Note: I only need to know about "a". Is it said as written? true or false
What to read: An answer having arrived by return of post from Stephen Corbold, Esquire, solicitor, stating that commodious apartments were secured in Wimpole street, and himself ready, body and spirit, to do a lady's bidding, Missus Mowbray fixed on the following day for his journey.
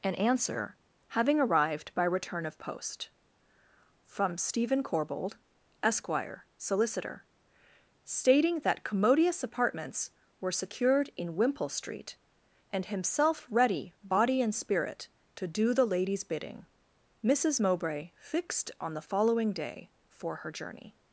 false